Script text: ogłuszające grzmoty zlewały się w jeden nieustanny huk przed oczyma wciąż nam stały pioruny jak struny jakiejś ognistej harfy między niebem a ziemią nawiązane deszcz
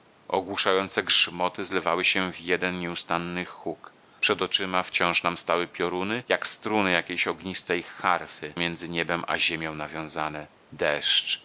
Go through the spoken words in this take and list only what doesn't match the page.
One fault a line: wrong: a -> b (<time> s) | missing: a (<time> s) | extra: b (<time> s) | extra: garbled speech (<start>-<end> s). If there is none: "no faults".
no faults